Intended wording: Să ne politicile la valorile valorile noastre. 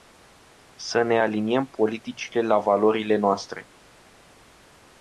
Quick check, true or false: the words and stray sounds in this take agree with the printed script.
false